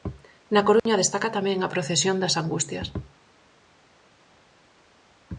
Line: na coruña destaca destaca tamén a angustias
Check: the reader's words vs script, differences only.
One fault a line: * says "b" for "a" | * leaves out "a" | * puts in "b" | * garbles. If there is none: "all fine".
* leaves out "destaca"
* puts in "procesión das"